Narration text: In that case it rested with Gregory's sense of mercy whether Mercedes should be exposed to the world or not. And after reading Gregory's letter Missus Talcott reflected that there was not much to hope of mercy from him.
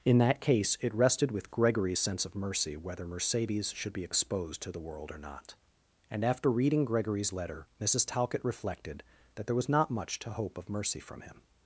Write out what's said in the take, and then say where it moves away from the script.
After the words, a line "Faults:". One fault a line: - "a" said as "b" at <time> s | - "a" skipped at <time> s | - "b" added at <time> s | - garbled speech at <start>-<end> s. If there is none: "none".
In that case it rested with Gregory's sense of mercy whether Mercedes should be exposed to the world or not. And after reading Gregory's letter Missus Talcott reflected that there was not much to hope of mercy from him.
Faults:
none